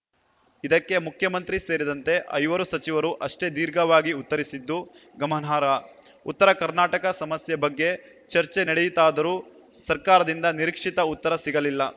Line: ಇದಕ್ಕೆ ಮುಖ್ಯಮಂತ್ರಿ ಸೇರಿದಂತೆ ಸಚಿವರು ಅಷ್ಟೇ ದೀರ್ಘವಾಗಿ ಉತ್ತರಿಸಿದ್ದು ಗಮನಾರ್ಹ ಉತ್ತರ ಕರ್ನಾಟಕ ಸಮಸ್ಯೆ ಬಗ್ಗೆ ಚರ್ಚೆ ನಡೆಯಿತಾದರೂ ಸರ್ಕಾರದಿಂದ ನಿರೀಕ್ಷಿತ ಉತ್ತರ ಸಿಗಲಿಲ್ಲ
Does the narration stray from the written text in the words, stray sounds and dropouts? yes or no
yes